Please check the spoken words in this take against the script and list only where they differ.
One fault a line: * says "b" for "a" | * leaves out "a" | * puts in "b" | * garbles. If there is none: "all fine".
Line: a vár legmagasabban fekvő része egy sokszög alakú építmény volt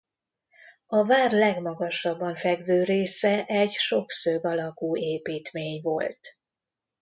all fine